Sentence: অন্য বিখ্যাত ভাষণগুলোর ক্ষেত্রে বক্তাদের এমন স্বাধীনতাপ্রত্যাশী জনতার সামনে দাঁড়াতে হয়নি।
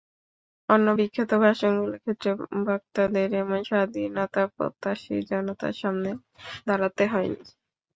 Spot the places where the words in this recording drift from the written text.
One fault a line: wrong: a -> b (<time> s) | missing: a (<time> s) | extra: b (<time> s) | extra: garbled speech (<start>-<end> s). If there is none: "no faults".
no faults